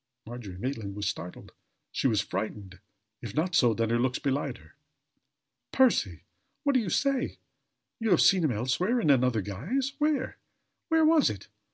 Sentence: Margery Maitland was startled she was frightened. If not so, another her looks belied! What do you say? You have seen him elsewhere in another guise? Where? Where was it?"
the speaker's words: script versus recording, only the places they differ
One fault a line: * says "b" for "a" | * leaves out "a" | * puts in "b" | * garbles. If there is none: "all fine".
* says "then" for "another"
* puts in "her Percy"